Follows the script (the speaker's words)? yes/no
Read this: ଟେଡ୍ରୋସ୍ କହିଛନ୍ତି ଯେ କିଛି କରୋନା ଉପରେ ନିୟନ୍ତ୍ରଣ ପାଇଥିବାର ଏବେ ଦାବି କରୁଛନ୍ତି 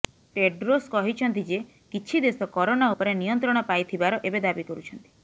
no